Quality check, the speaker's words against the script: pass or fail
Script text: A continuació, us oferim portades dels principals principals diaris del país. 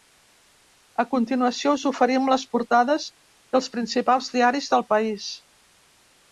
fail